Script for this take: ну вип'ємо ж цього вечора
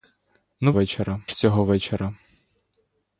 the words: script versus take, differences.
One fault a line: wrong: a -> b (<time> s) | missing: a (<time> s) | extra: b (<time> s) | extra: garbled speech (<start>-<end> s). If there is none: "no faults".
wrong: вип'ємо -> вечора (0.7 s)